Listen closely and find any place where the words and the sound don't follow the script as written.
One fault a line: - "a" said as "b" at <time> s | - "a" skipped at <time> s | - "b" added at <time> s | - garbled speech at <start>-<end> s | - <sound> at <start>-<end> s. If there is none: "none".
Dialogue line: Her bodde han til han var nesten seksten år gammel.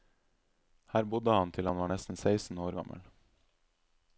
none